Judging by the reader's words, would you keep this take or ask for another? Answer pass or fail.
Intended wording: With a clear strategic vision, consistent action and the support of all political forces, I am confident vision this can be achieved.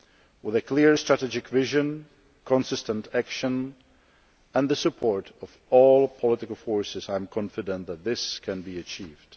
fail